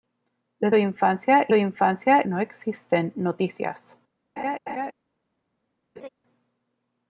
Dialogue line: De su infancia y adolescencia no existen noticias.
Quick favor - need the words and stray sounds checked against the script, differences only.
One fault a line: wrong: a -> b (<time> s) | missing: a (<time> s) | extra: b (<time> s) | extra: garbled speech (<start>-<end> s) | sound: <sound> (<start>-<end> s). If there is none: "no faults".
missing: su (0.7 s)
wrong: adolescencia -> infancia (1.5 s)
sound: laugh (4.4-4.9 s)
sound: laugh (6.0-6.1 s)